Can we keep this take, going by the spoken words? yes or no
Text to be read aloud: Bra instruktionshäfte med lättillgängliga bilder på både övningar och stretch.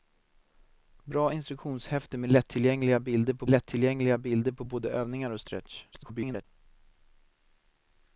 no